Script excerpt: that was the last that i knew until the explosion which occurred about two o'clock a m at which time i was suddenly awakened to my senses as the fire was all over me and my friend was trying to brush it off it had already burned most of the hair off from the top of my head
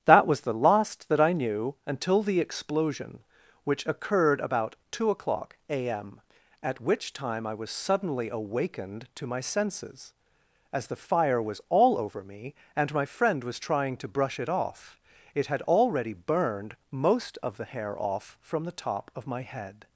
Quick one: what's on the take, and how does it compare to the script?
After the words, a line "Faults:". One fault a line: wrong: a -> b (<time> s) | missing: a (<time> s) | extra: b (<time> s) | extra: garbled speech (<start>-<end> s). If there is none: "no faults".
that was the last that i knew until the explosion which occurred about two o'clock a m at which time i was suddenly awakened to my senses as the fire was all over me and my friend was trying to brush it off it had already burned most of the hair off from the top of my head
Faults:
no faults